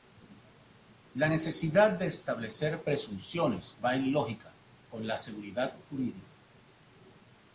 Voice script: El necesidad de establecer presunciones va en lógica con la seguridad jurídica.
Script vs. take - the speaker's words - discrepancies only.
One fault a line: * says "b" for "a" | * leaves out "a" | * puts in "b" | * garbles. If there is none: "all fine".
* says "La" for "El"